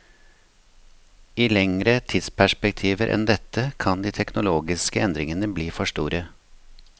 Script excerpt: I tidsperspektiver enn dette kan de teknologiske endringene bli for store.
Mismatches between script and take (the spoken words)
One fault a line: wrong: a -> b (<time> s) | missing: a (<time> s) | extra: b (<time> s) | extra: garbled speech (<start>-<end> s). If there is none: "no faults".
extra: lengre (1.5 s)